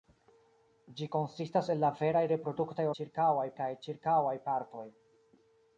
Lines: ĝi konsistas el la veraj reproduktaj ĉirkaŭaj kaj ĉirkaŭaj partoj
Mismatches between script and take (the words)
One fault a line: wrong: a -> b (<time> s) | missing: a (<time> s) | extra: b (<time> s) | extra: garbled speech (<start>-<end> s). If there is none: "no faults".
no faults